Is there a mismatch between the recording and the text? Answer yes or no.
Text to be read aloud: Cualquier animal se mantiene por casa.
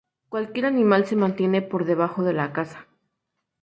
yes